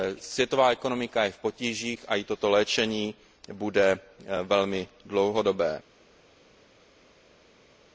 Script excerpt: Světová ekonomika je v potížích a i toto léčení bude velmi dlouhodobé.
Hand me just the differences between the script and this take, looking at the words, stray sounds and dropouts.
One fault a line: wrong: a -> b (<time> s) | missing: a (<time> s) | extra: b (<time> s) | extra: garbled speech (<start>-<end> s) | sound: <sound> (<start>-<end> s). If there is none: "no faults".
no faults